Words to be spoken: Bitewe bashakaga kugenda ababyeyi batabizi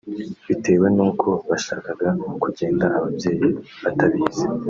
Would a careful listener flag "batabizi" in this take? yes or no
no